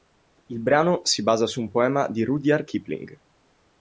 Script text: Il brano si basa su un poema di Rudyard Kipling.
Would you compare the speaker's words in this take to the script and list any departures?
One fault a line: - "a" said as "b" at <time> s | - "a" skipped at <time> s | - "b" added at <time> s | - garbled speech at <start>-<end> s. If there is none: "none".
none